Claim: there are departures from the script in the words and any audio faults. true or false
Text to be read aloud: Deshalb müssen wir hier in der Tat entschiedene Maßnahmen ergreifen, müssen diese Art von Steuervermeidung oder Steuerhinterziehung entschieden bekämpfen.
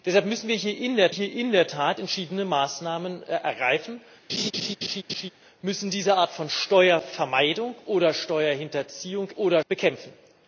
true